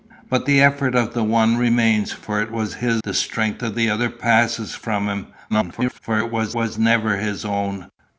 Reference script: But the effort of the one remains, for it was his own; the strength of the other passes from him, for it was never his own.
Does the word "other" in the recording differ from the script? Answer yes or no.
no